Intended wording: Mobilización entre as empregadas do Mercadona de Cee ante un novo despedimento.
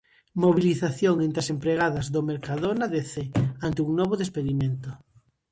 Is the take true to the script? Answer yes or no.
yes